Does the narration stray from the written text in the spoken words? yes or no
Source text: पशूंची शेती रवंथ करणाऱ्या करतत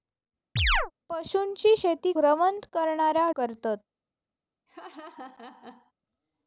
no